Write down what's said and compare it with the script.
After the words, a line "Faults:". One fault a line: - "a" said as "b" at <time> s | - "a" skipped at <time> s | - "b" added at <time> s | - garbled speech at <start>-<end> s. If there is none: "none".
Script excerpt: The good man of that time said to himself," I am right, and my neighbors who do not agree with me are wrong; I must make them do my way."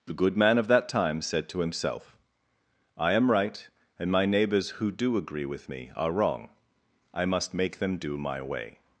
The good man of that time said to himself," I am right, and my neighbors who do agree with me are wrong; I must make them do my way."
Faults:
- "not" skipped at 5.2 s